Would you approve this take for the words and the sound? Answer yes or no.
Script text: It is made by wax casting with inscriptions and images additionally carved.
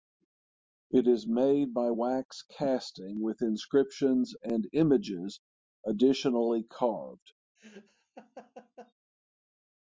no